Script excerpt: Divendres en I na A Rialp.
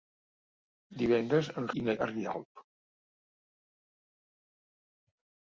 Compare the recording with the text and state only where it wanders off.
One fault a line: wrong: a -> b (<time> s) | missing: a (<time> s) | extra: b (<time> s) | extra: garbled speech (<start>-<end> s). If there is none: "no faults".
no faults